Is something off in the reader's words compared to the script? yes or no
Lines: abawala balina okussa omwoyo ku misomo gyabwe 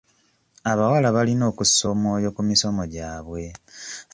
no